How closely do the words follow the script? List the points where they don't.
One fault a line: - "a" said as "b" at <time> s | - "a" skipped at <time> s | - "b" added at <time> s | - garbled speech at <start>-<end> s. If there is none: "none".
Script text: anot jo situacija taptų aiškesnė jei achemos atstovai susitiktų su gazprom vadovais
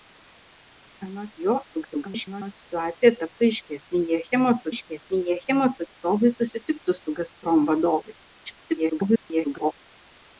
- garbled speech at 1.7-2.5 s
- "aiškesnė jei achemos" added at 4.7 s
- garbled speech at 8.5-9.7 s